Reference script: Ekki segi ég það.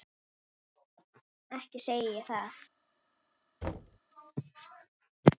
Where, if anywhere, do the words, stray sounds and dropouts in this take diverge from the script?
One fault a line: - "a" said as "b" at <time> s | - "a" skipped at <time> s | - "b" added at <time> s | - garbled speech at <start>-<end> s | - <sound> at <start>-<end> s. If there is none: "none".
- thud at 3.6-4.0 s